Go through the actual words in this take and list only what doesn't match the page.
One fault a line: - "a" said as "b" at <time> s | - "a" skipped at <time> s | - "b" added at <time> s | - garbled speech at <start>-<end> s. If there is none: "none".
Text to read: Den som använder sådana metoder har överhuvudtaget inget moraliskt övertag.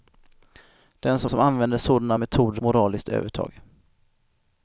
- "som" added at 1.3 s
- "har överhuvudtaget inget" skipped at 2.6 s